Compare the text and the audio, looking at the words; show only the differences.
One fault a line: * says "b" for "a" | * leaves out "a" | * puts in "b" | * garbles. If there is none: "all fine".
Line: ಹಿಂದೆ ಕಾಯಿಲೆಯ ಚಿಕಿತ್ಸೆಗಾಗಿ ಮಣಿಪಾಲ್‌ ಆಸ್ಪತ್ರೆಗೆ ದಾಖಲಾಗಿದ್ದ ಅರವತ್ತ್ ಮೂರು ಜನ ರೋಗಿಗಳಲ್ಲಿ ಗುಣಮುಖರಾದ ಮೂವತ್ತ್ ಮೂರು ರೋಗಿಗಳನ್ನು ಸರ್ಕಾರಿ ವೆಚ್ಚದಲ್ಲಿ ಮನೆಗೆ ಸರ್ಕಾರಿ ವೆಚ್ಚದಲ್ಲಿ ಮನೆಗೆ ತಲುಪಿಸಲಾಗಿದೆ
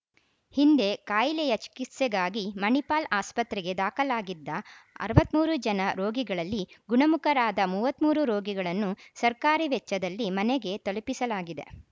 * leaves out "ಸರ್ಕಾರಿ ವೆಚ್ಚದಲ್ಲಿ ಮನೆಗೆ"